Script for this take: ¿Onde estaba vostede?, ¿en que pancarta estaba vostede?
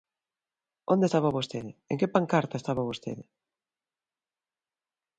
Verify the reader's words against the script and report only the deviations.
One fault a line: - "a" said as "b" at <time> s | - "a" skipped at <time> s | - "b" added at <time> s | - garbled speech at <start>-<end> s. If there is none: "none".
none